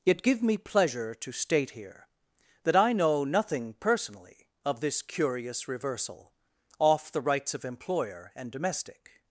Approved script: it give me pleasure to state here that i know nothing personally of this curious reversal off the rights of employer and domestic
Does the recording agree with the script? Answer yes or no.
yes